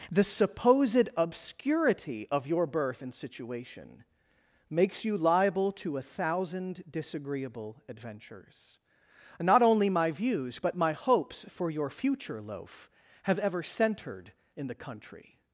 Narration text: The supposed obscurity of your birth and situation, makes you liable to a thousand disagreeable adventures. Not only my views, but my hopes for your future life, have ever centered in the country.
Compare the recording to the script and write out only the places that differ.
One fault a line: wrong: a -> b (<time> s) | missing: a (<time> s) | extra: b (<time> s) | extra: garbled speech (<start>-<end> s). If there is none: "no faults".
wrong: life -> loaf (12.4 s)